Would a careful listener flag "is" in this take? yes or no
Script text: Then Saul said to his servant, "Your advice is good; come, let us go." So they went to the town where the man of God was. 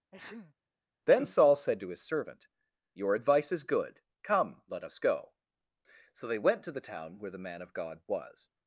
no